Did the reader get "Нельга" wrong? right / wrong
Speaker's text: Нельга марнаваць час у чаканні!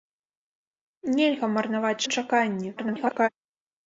right